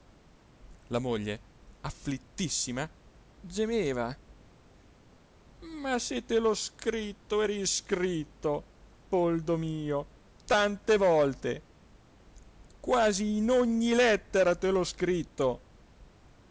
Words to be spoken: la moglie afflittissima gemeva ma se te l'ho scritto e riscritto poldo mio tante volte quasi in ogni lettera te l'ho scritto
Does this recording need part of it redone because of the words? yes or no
no